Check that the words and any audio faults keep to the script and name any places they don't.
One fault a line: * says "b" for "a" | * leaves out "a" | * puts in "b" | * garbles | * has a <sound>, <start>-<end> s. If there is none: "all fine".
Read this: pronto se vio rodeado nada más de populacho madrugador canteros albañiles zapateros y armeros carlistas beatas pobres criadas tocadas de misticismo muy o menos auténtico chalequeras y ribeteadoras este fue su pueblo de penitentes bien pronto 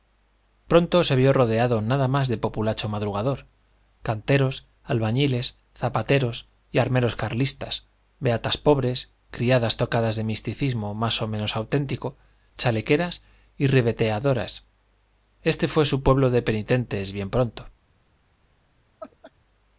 * says "más" for "muy"
* has a laugh, 19.0-19.3 s